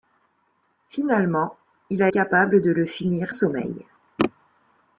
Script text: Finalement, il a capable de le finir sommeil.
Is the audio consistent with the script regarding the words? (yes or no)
yes